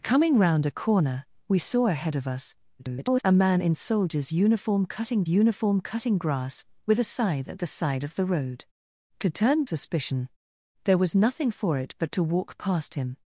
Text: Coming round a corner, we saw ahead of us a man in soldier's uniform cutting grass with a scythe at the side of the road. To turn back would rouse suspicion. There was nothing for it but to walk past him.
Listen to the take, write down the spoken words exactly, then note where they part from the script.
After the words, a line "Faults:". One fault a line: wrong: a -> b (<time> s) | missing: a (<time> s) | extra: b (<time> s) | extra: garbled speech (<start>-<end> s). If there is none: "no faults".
Coming round a corner, we saw ahead of us [garbled] a man in soldier's uniform cutting uniform cutting grass with a scythe at the side of the road. To turn suspicion. There was nothing for it but to walk past him.
Faults:
extra: garbled speech (2.8-3.2 s)
extra: uniform cutting (5.3 s)
missing: back would rouse (9.6 s)